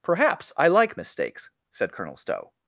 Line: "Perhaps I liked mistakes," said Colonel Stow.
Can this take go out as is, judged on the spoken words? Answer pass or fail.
fail